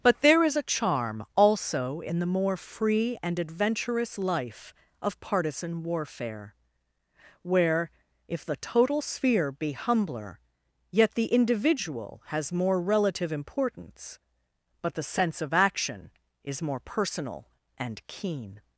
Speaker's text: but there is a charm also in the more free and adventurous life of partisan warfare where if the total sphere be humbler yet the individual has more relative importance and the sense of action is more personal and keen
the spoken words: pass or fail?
fail